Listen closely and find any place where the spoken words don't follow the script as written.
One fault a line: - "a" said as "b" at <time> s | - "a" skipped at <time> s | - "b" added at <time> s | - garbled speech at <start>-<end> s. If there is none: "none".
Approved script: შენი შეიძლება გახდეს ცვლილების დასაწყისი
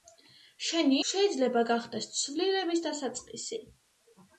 none